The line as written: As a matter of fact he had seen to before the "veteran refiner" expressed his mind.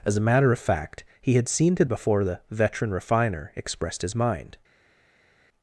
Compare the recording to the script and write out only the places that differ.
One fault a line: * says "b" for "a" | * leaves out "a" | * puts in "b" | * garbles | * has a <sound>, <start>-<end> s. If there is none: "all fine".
all fine